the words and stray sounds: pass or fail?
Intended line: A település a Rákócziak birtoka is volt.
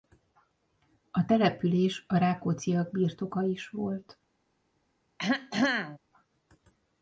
fail